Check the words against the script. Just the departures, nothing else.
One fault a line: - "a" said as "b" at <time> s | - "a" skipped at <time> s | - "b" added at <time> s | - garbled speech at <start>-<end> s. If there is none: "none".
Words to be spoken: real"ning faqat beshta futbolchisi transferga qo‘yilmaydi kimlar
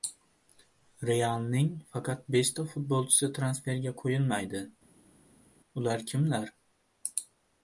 - "ular" added at 5.8 s